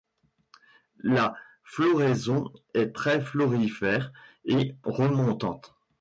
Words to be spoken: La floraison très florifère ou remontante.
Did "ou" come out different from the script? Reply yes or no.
yes